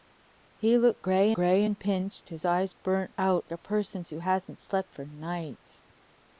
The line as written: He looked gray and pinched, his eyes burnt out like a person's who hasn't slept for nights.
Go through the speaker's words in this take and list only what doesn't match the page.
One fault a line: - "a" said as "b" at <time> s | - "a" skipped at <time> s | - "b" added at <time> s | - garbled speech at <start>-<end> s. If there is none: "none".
- "gray" added at 1.3 s
- "like" skipped at 3.5 s